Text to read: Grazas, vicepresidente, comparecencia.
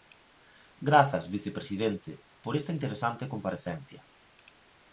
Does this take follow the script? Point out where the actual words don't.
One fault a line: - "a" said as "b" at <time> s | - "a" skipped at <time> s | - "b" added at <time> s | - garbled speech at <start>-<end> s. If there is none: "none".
- "por esta interesante" added at 2.4 s